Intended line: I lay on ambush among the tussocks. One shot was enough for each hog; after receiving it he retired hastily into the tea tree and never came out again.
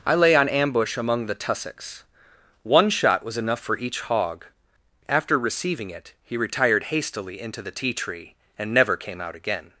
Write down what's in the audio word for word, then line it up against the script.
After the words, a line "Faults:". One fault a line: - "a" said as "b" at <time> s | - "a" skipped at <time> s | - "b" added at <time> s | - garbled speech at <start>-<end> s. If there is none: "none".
I lay on ambush among the tussocks. One shot was enough for each hog; after receiving it he retired hastily into the tea tree and never came out again.
Faults:
none